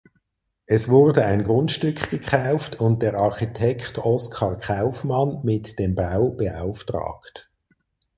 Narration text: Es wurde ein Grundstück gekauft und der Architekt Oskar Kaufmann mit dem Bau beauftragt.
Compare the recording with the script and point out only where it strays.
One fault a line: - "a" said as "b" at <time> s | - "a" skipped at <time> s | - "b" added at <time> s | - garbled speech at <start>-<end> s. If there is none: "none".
none